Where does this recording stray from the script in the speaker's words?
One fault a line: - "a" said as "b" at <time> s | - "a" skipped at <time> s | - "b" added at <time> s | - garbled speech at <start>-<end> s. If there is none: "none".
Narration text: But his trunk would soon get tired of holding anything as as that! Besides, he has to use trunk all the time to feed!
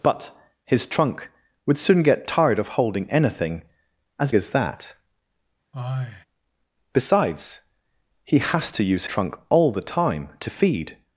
none